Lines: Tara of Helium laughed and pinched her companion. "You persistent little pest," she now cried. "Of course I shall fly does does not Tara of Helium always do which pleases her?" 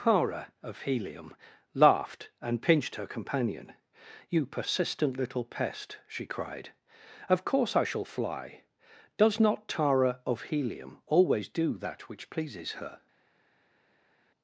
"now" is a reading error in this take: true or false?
true